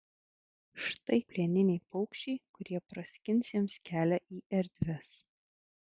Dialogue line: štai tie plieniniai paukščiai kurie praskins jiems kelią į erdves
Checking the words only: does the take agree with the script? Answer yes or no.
no